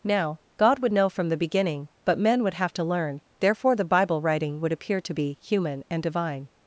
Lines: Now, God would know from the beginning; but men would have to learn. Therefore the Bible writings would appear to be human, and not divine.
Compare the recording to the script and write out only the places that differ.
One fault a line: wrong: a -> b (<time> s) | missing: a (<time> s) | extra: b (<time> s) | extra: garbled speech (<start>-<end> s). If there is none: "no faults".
wrong: writings -> writing (4.2 s)
missing: not (6.0 s)